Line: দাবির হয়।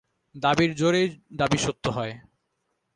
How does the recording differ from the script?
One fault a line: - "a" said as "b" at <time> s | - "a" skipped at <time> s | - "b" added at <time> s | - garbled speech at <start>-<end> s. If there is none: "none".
- "জোরেই দাবি সত্য" added at 0.8 s